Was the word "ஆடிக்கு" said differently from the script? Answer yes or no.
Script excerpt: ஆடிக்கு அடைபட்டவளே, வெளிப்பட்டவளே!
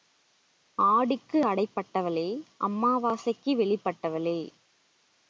no